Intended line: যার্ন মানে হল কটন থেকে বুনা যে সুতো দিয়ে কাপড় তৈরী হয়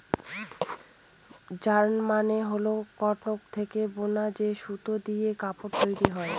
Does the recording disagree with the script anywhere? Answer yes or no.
no